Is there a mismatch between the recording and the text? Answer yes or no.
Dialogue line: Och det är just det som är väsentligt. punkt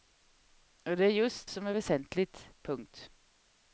yes